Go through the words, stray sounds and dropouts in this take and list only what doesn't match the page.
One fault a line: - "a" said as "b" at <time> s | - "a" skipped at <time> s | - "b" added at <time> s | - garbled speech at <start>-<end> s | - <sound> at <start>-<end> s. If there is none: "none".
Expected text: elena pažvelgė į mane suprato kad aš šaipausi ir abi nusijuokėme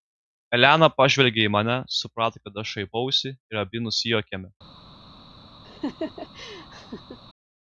- laugh at 5.6-7.2 s